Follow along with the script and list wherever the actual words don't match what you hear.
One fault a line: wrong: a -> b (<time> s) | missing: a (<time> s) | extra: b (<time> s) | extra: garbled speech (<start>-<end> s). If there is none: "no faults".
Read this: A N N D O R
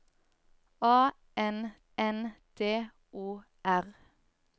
no faults